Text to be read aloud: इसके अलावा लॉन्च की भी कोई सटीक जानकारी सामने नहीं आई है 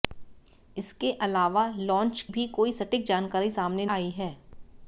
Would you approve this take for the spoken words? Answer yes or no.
no